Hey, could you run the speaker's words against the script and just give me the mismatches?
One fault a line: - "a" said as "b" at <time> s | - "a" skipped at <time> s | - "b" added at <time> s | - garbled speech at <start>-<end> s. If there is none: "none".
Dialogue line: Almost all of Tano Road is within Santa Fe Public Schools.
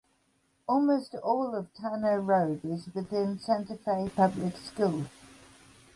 none